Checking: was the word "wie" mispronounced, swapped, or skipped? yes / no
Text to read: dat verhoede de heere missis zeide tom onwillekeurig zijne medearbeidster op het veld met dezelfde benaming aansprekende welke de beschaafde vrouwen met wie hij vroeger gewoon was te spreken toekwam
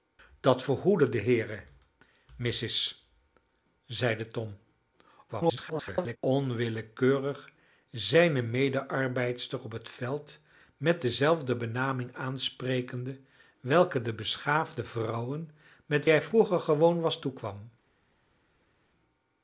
yes